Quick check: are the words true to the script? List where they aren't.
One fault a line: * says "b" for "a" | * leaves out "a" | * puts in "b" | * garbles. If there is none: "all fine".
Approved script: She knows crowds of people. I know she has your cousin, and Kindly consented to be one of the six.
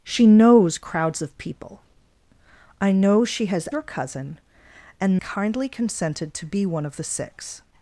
all fine